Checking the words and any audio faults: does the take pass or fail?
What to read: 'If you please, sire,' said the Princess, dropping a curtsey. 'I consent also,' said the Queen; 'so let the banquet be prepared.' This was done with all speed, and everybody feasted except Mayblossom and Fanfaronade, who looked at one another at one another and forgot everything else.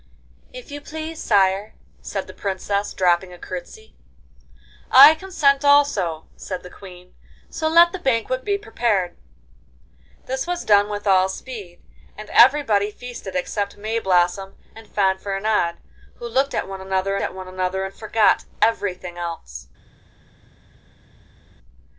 pass